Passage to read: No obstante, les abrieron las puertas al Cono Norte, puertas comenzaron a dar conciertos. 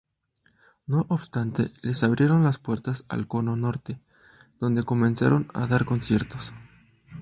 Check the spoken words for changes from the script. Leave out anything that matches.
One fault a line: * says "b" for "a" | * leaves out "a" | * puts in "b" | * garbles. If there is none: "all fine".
* says "donde" for "puertas"